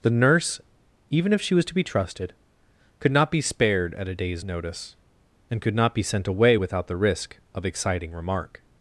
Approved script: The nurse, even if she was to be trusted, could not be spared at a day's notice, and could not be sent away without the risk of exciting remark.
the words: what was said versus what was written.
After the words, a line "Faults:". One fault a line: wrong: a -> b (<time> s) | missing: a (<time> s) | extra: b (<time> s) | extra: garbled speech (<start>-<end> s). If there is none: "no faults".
The nurse, even if she was to be trusted, could not be spared at a day's notice, and could not be sent away without the risk of exciting remark.
Faults:
no faults